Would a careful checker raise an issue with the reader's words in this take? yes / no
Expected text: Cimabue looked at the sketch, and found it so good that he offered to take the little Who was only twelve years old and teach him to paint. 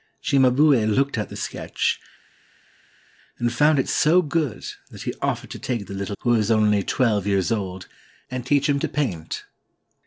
no